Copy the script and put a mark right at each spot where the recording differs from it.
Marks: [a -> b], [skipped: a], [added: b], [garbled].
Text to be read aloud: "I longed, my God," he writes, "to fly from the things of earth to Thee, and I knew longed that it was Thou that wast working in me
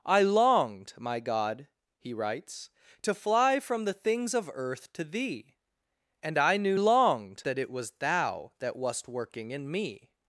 "I longed, my God," he writes, "to fly from the things of earth to Thee, and I knew longed that it was Thou that wast working in me